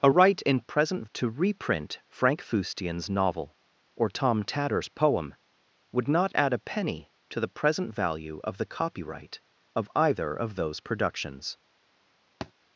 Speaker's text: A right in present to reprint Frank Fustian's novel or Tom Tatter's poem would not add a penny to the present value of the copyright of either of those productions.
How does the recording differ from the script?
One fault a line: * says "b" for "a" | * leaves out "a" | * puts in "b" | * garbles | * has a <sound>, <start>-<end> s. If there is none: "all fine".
* has a thud, 12.4-12.5 s